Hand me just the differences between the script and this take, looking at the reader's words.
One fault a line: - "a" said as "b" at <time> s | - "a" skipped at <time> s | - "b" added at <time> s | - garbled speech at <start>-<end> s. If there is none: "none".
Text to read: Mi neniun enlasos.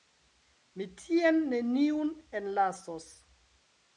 - "tien" added at 1.0 s